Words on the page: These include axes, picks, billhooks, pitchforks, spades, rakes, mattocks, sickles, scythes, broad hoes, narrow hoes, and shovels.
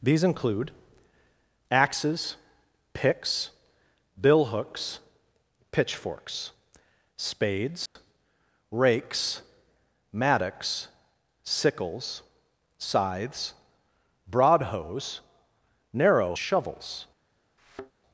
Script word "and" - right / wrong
wrong